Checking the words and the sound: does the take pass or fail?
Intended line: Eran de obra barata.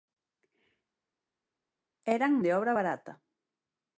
pass